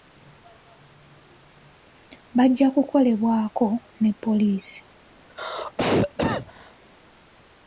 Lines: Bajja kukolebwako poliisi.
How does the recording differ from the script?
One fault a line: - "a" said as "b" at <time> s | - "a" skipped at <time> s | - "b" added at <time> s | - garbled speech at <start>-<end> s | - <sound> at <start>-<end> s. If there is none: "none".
- "ne" added at 4.0 s
- cough at 5.2-6.8 s